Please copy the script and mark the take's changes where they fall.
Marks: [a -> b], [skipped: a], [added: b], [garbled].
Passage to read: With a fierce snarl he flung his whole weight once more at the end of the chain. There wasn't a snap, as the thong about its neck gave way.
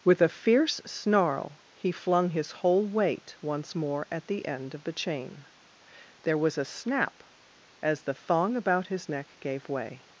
With a fierce snarl he flung his whole weight once more at the end of the chain. There [wasn't -> was] a snap, as the thong about [its -> his] neck gave way.